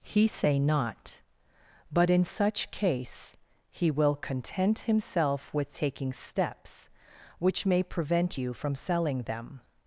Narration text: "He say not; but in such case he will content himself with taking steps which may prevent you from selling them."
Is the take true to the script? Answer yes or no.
yes